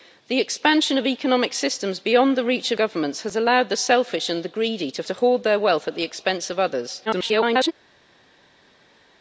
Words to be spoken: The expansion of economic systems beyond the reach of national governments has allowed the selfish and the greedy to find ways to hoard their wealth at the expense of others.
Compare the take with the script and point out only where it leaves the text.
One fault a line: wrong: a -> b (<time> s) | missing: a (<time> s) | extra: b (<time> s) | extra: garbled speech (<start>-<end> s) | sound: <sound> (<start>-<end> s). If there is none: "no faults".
missing: national (2.8 s)
missing: find ways (5.0 s)
extra: garbled speech (7.1-7.7 s)